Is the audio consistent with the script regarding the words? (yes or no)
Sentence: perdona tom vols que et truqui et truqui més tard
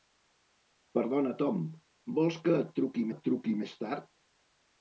yes